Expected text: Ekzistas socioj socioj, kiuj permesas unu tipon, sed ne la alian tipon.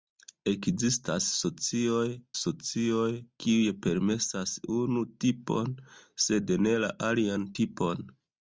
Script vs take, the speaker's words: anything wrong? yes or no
no